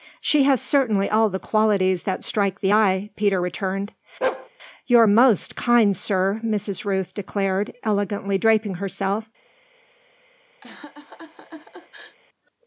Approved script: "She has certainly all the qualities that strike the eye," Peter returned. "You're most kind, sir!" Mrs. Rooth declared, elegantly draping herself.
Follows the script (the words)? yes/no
yes